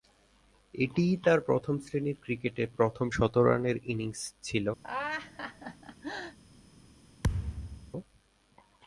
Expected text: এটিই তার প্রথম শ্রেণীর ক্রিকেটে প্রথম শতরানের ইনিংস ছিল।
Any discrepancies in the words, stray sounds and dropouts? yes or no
yes